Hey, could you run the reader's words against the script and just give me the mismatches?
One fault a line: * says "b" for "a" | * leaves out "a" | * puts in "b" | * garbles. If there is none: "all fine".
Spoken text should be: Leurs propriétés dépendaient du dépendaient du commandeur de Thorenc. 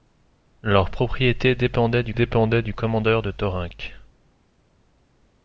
all fine